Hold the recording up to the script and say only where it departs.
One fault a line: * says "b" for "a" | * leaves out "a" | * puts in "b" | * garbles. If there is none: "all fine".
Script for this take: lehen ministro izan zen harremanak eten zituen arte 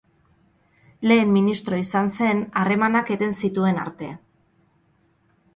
all fine